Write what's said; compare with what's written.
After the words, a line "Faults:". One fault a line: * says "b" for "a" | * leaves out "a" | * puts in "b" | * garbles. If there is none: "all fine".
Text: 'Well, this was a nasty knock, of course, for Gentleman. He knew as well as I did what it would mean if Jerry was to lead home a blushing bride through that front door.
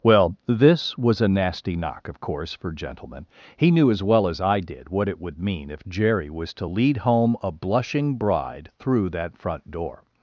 'Well, this was a nasty knock, of course, for Gentleman. He knew as well as I did what it would mean if Jerry was to lead home a blushing bride through that front door.
Faults:
all fine